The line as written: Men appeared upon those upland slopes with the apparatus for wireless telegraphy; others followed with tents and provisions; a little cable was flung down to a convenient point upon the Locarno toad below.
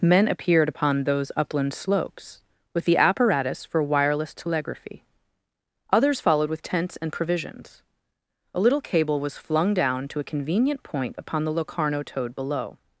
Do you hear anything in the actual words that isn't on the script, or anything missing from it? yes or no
no